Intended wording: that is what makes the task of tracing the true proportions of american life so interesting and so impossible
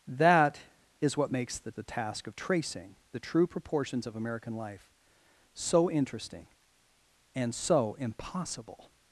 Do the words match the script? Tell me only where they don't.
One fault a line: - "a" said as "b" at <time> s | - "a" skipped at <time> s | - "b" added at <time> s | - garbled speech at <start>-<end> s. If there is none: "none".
- "the" added at 1.7 s